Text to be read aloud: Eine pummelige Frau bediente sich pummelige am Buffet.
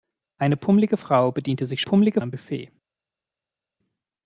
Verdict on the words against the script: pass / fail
pass